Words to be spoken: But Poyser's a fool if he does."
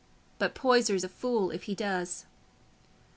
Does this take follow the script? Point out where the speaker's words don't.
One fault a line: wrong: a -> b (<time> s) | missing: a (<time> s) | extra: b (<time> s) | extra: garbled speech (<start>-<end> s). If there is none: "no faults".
no faults